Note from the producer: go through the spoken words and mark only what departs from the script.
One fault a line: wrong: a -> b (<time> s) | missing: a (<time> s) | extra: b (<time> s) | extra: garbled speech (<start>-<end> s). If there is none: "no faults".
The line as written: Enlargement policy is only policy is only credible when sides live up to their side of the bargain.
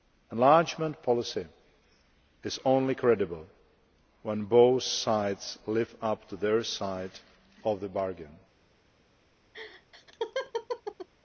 missing: policy is only (3.0 s)
extra: both (4.5 s)